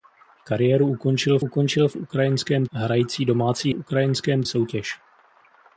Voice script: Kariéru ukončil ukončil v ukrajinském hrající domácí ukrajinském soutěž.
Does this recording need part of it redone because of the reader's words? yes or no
no